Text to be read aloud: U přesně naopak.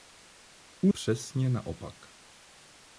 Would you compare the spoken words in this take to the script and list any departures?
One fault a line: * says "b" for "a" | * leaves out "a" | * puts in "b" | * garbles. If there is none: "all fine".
all fine